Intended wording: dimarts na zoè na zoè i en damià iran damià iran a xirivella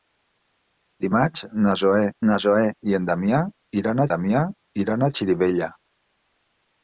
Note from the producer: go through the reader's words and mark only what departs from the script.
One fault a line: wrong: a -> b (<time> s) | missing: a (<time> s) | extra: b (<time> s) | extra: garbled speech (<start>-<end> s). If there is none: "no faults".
no faults